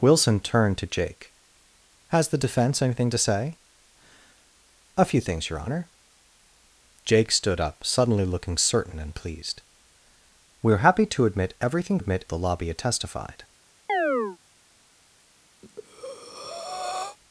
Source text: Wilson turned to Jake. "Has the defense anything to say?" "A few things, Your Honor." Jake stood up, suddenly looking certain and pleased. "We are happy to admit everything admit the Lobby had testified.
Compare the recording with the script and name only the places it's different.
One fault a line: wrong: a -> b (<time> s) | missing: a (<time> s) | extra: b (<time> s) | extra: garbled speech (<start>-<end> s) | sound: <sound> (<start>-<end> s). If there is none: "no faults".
sound: chirp (13.9-14.4 s)
sound: breath (15.6-17.2 s)